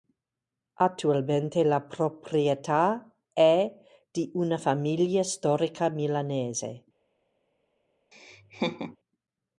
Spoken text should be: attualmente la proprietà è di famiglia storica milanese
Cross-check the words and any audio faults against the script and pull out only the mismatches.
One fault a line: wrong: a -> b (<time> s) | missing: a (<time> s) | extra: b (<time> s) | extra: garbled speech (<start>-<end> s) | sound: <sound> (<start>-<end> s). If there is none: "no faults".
extra: una (4.3 s)
sound: laugh (8.1-9.0 s)